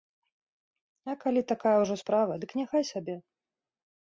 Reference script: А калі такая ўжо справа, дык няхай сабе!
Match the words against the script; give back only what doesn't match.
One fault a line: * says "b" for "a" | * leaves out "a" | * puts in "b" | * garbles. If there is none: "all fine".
all fine